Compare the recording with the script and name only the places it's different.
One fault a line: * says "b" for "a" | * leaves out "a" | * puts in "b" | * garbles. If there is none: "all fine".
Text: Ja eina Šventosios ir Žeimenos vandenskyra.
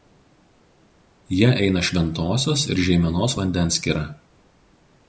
all fine